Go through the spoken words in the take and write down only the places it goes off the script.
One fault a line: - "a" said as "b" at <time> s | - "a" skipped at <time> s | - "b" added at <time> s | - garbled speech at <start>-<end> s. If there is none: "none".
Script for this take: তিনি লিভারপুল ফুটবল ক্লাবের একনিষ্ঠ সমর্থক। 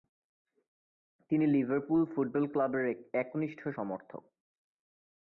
none